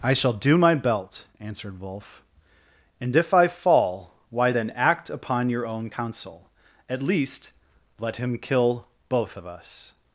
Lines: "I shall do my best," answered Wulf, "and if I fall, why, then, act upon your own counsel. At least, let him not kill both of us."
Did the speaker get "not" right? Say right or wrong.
wrong